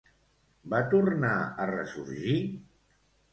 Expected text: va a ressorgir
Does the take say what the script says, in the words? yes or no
no